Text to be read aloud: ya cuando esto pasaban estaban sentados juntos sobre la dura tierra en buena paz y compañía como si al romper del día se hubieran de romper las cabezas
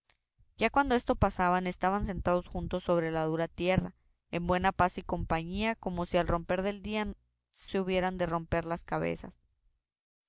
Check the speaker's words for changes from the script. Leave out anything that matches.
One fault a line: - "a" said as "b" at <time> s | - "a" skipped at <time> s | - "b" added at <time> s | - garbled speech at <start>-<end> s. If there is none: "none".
none